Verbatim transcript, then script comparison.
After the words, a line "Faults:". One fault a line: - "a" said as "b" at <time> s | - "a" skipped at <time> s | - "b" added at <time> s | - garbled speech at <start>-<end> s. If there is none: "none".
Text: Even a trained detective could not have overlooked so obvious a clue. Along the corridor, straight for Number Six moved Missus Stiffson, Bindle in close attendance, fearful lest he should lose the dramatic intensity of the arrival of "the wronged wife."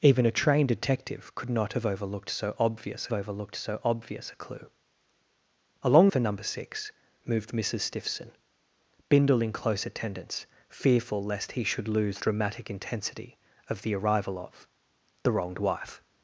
Even a trained detective could not have overlooked so obvious overlooked so obvious a clue. Along for Number Six moved Missus Stiffson, Bindle in close attendance, fearful lest he should lose dramatic intensity of the arrival of "the wronged wife."
Faults:
- "overlooked so obvious" added at 3.1 s
- "the corridor straight" skipped at 6.1 s
- "the" skipped at 12.2 s